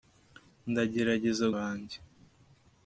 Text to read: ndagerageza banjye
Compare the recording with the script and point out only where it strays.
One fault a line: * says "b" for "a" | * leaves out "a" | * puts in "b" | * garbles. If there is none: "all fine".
all fine